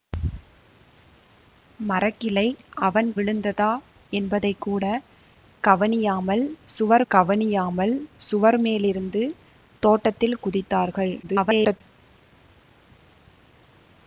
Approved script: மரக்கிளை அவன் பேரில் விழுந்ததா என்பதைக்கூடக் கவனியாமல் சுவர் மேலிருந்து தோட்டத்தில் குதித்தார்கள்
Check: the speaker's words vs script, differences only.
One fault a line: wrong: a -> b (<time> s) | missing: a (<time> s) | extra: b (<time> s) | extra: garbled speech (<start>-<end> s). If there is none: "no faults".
missing: பேரில் (3.1 s)
extra: கவனியாமல் சுவர் (7.1 s)
extra: garbled speech (11.2-11.8 s)